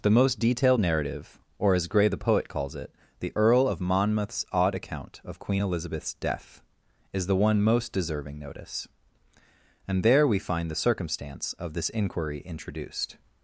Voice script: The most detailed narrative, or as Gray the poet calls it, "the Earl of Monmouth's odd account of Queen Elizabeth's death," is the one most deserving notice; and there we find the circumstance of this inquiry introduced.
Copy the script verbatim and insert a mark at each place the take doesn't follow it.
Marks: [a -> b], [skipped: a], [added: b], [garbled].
The most detailed narrative, or as Gray the poet calls it, "the Earl of Monmouth's odd account of Queen Elizabeth's death," is the one most deserving notice; and there we find the circumstance of this inquiry introduced.